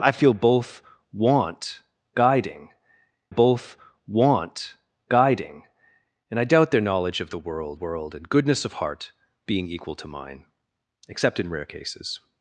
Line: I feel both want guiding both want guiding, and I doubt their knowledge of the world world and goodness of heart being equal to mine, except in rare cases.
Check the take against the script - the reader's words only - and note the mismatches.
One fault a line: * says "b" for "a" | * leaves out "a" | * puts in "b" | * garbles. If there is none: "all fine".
all fine